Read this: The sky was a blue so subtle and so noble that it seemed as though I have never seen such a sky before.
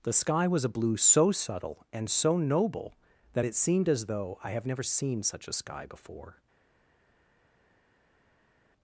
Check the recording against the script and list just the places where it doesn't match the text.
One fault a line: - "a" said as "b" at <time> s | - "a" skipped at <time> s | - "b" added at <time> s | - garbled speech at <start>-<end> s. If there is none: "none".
none